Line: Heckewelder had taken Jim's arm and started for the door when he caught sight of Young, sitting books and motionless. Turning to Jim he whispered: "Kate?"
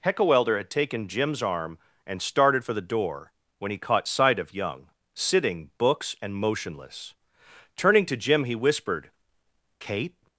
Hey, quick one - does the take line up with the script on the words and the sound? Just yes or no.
yes